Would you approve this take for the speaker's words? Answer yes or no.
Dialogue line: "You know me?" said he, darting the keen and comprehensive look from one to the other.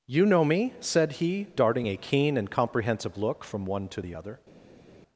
no